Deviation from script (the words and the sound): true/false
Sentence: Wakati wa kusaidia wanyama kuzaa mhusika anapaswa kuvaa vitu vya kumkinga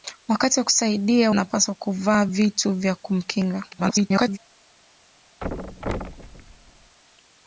true